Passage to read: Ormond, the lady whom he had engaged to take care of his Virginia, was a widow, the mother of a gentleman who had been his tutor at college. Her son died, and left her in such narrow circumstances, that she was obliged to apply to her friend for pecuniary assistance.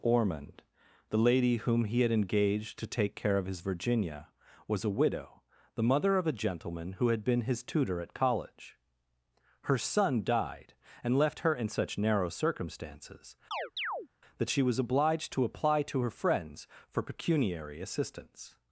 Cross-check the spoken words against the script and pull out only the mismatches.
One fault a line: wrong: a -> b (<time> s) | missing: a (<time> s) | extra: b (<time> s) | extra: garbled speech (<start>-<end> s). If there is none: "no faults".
wrong: friend -> friends (16.1 s)